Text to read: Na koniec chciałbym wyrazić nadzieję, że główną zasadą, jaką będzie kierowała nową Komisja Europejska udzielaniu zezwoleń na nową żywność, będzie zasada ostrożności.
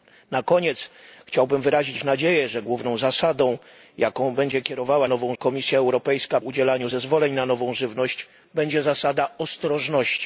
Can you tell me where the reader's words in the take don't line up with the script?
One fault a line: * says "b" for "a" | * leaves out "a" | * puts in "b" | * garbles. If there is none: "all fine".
all fine